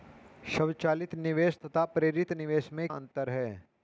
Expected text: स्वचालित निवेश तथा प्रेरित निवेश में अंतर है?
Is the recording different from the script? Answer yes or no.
no